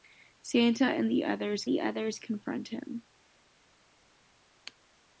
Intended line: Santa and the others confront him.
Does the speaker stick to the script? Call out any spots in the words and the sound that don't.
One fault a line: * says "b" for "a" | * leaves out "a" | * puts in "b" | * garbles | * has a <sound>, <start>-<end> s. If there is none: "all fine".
* puts in "the others"